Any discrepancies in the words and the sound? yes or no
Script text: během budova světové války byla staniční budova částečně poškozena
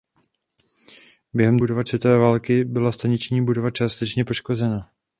no